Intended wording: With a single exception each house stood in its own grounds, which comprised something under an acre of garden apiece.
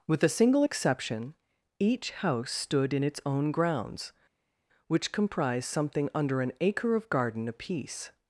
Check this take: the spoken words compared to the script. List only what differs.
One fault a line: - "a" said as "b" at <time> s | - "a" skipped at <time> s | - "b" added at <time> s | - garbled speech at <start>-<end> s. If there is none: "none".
none